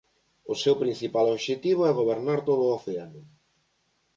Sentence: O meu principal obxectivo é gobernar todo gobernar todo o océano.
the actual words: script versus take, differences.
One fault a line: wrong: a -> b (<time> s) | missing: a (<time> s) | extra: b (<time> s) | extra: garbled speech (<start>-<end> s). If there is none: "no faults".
wrong: meu -> seu (0.6 s)
missing: gobernar todo (2.6 s)